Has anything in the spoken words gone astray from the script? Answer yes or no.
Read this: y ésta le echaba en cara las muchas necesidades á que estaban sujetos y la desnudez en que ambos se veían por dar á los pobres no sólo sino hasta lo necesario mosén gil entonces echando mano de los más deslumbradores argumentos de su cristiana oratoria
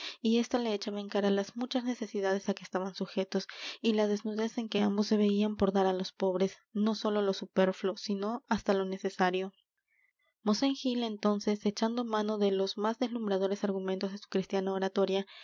yes